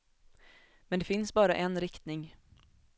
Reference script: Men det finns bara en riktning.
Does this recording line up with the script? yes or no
yes